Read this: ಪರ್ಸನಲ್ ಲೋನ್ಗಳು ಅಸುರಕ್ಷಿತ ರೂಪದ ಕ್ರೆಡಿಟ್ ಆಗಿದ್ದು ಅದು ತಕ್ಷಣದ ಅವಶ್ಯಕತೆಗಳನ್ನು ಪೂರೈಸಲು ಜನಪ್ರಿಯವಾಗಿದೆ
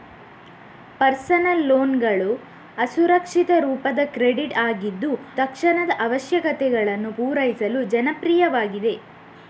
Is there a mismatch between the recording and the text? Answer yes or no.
yes